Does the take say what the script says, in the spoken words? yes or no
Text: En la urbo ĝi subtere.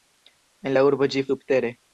yes